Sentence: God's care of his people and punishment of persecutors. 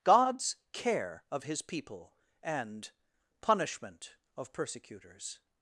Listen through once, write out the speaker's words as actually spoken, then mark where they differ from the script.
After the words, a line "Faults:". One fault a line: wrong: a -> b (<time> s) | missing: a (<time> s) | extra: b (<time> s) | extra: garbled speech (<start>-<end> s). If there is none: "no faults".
God's care of his people and punishment of persecutors.
Faults:
no faults